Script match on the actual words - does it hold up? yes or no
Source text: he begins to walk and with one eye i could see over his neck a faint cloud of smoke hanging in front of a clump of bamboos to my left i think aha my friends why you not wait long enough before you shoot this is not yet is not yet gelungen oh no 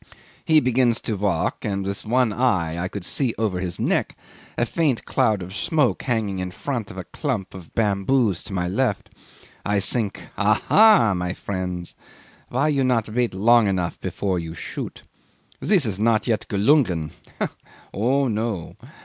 no